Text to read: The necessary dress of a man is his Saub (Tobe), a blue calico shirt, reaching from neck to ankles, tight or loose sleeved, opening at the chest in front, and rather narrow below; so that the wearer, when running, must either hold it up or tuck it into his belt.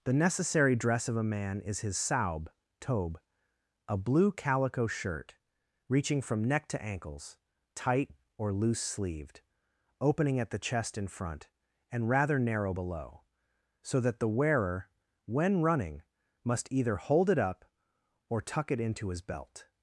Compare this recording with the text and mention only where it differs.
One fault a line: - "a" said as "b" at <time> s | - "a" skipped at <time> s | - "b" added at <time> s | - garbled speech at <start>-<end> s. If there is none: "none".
none